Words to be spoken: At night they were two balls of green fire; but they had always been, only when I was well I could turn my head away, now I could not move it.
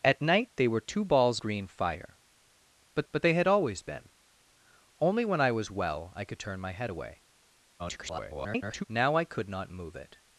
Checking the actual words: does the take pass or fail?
fail